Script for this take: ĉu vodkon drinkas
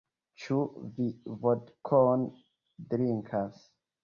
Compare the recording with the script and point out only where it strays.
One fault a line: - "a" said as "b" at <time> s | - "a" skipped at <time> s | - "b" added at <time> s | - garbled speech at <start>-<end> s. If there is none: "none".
- "vi" added at 0.9 s